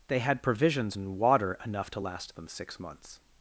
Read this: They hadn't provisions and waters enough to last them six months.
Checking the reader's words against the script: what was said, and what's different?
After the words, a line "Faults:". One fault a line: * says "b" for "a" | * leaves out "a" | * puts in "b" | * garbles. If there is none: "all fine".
They had provisions and water enough to last them six months.
Faults:
* says "had" for "hadn't"
* says "water" for "waters"